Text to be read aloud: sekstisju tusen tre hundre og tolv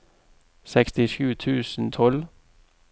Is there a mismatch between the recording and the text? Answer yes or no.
yes